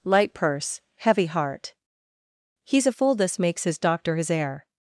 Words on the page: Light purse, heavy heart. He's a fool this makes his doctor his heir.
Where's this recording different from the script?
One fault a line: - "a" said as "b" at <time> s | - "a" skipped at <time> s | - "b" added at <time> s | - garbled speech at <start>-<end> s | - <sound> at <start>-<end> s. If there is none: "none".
none